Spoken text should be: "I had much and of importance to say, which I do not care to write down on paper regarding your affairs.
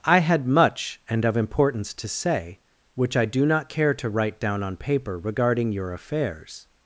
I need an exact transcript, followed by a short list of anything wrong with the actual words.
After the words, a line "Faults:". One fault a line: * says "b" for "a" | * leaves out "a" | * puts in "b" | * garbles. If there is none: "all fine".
"I had much and of importance to say, which I do not care to write down on paper regarding your affairs.
Faults:
all fine